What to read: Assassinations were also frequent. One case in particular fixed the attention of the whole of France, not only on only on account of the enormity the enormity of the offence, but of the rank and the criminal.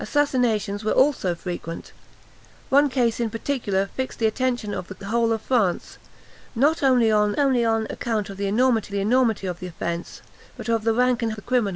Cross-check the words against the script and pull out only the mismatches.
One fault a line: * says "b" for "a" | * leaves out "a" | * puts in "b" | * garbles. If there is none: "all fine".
all fine